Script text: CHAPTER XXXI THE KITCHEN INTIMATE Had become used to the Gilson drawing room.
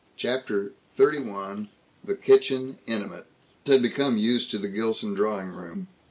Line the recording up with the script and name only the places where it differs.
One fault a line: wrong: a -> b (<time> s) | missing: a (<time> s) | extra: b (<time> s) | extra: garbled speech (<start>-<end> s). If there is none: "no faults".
no faults